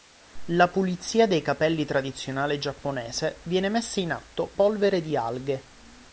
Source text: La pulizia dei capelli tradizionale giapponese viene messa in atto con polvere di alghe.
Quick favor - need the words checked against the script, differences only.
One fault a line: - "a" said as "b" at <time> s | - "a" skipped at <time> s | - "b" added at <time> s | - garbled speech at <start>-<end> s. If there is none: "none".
- "con" skipped at 4.5 s